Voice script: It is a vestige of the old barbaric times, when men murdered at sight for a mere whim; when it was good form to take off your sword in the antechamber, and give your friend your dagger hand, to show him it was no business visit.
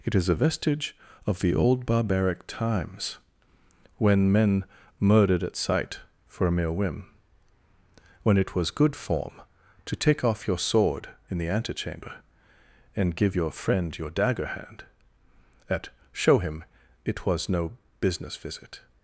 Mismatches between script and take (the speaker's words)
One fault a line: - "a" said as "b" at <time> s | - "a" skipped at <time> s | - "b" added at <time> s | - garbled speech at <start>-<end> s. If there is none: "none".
- "to" said as "at" at 15.7 s